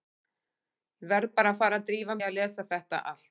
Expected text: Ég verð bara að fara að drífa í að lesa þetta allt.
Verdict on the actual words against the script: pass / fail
pass